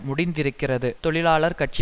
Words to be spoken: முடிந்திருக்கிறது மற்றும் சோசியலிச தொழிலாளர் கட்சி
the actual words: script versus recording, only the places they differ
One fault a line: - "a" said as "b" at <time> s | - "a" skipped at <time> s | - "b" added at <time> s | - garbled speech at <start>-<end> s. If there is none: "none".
- "மற்றும் சோசியலிச" skipped at 0.9 s